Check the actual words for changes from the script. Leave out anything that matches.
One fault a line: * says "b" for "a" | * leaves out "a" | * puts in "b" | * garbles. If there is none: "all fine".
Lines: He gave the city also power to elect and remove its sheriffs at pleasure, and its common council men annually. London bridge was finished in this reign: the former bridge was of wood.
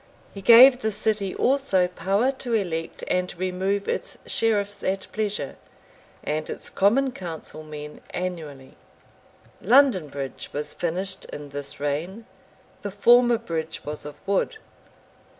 all fine